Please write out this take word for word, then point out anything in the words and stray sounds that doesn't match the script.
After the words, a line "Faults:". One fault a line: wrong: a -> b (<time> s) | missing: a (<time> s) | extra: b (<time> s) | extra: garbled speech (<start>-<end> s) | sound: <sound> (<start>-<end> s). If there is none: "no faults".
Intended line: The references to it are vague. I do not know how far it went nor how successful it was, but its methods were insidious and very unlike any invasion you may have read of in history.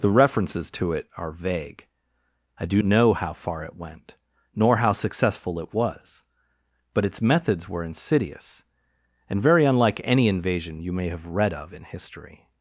The references to it are vague. I do know how far it went nor how successful it was, but its methods were insidious and very unlike any invasion you may have read of in history.
Faults:
missing: not (2.8 s)